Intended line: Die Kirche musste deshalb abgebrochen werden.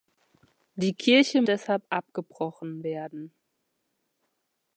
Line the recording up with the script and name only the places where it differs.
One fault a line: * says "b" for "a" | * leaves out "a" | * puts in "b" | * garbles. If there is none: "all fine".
* leaves out "musste"